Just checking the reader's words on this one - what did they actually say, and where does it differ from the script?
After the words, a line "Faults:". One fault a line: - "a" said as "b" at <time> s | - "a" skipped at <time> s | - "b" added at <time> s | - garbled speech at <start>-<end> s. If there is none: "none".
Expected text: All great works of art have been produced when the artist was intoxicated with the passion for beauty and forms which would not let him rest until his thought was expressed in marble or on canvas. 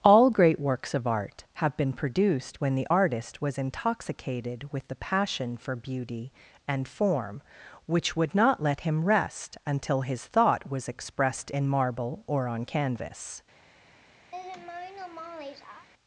All great works of art have been produced when the artist was intoxicated with the passion for beauty and form which would not let him rest until his thought was expressed in marble or on canvas.
Faults:
- "forms" said as "form" at 6.9 s